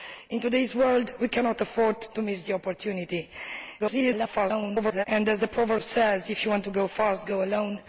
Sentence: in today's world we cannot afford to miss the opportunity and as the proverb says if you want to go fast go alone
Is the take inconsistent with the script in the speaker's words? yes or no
yes